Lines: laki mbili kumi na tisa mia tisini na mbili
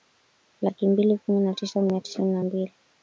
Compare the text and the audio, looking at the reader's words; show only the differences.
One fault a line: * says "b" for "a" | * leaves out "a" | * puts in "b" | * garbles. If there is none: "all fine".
all fine